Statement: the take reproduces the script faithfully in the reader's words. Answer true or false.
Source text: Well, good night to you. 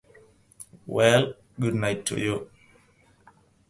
true